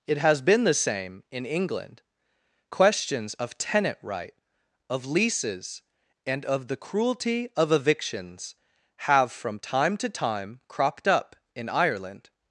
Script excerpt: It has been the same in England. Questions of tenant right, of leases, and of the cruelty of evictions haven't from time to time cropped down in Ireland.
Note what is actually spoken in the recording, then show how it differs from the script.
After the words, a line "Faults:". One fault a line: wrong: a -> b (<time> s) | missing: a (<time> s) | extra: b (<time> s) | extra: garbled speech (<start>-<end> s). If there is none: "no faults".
It has been the same in England. Questions of tenant right, of leases, and of the cruelty of evictions have from time to time cropped up in Ireland.
Faults:
wrong: haven't -> have (9.0 s)
wrong: down -> up (11.1 s)